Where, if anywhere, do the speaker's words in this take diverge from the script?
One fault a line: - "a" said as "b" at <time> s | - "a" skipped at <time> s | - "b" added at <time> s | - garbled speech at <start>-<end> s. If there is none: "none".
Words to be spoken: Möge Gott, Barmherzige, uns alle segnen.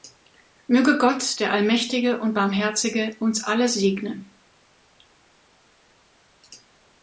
- "der Allmächtige und" added at 1.4 s